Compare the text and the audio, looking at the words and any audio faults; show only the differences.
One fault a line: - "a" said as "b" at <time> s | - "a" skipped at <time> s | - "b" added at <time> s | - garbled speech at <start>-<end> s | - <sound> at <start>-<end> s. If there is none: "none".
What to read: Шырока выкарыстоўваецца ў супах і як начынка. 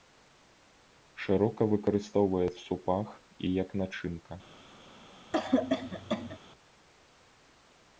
- "ў" skipped at 2.5 s
- cough at 5.3-6.4 s